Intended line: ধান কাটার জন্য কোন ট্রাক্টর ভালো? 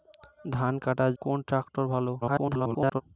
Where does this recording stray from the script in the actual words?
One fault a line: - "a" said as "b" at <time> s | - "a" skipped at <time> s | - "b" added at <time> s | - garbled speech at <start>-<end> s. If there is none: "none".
- "জন্য" skipped at 1.1 s
- garbled speech at 2.2-3.0 s